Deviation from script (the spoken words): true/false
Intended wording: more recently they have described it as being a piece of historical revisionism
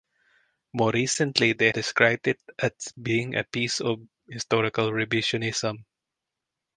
true